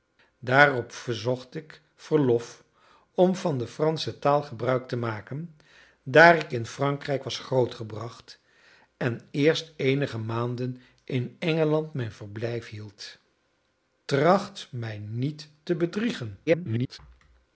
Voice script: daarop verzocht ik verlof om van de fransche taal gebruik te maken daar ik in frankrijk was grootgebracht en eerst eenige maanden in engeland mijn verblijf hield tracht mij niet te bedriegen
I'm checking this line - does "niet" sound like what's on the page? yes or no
yes